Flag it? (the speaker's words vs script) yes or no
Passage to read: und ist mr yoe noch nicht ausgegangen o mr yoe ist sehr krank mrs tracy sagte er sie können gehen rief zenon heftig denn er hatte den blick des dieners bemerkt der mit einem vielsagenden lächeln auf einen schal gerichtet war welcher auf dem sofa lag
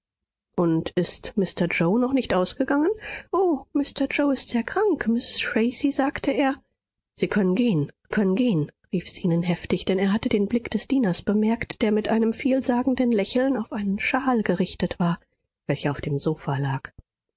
yes